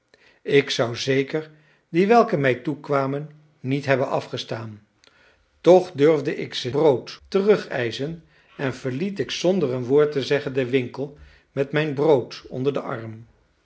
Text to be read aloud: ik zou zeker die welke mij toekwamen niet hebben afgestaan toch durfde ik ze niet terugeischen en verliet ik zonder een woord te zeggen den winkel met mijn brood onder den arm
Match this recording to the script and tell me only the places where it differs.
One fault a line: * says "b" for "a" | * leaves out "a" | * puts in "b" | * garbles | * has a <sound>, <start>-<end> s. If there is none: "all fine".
* says "brood" for "niet"